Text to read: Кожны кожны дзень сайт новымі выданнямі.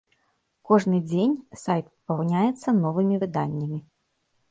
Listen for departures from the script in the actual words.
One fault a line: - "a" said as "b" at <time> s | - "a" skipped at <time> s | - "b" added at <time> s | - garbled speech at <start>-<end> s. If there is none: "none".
- "кожны" skipped at 1.0 s
- "папаўняецца" added at 1.9 s